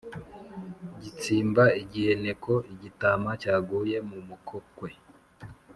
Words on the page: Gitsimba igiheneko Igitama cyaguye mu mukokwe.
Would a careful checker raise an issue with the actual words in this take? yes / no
no